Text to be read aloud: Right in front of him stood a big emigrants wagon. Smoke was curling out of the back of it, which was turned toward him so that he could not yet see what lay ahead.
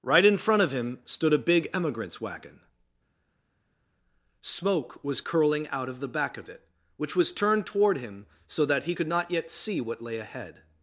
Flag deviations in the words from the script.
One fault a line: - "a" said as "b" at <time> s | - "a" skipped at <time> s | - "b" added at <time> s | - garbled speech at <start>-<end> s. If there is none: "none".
none